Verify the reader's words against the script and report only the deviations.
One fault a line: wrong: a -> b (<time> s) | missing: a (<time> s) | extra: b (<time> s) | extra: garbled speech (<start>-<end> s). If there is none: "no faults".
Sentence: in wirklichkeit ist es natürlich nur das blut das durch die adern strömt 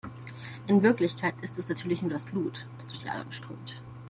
no faults